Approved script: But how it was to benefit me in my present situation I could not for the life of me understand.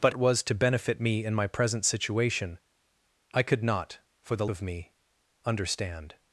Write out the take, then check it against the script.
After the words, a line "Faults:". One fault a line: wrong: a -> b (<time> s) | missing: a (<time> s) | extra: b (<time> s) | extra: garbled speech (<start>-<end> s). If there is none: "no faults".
But it was to benefit me in my present situation I could not for the of me understand.
Faults:
missing: how (0.1 s)
missing: life (4.5 s)